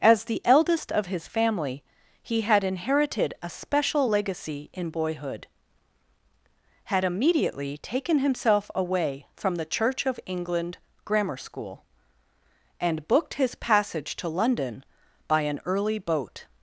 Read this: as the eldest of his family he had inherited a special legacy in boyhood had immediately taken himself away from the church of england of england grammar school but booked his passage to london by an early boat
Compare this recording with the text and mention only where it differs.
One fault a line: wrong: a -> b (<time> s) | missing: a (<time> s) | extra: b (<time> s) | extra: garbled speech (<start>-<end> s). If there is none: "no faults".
missing: of england (10.8 s)
wrong: but -> and (12.8 s)